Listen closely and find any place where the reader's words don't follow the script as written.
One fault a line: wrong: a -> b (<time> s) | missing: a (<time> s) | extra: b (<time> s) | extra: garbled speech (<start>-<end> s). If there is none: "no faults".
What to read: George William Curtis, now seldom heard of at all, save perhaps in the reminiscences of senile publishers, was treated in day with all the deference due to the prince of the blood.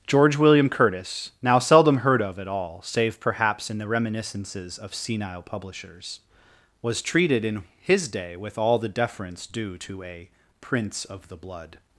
extra: his (7.8 s)
wrong: the -> a (10.0 s)